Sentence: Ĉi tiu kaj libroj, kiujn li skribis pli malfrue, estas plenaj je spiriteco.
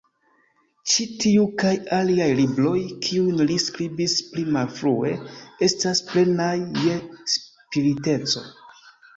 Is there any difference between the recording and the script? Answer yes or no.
yes